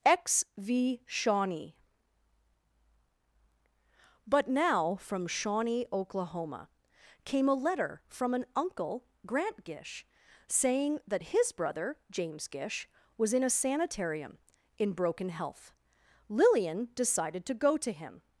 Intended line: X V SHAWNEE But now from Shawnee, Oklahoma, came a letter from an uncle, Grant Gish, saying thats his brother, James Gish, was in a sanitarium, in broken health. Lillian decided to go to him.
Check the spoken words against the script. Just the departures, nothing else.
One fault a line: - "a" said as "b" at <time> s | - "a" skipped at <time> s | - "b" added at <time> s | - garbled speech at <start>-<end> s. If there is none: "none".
- "thats" said as "that" at 11.1 s